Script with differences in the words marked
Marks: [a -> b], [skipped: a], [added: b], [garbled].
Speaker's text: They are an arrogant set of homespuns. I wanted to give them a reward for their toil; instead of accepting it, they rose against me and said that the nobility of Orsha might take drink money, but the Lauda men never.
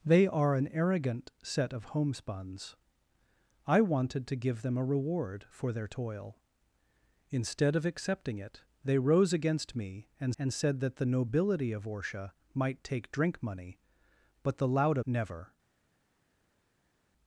They are an arrogant set of homespuns. I wanted to give them a reward for their toil; instead of accepting it, they rose against me and [added: and] said that the nobility of Orsha might take drink money, but the Lauda [skipped: men] never.